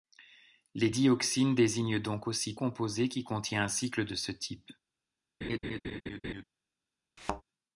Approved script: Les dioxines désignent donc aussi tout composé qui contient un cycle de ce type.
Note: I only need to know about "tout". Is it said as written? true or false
false